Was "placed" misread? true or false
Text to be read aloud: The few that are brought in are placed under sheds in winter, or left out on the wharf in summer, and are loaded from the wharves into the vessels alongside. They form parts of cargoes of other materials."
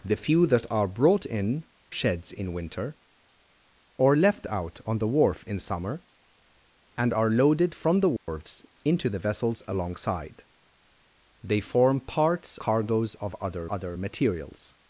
true